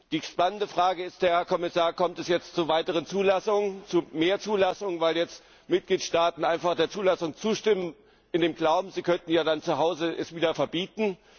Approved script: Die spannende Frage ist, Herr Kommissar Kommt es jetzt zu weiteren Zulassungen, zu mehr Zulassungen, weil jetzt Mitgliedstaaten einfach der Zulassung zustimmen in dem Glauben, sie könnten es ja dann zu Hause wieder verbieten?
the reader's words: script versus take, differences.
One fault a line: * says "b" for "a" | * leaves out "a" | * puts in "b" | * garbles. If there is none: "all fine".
all fine